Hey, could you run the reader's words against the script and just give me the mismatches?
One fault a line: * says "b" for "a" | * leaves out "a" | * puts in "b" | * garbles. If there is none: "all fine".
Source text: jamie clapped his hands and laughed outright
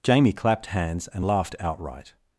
* leaves out "his"